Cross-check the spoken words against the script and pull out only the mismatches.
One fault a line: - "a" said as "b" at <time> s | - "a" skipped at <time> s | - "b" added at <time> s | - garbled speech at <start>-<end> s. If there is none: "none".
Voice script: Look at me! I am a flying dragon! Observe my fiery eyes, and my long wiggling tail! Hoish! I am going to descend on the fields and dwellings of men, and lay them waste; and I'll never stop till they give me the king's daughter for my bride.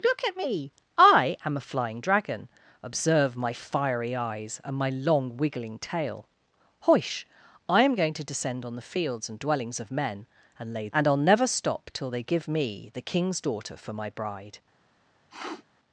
- "them waste" skipped at 10.9 s